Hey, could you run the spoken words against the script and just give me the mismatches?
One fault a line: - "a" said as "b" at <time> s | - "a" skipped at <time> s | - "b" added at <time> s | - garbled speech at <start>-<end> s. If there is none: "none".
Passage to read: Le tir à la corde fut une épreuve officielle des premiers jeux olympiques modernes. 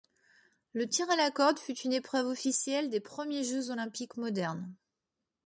none